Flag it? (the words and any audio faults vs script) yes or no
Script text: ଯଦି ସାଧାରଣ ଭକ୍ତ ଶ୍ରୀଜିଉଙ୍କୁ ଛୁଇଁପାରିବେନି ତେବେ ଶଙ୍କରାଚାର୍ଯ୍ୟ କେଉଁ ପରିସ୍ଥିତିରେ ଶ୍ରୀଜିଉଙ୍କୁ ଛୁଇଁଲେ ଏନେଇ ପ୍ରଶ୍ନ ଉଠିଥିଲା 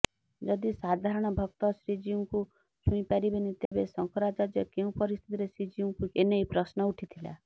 yes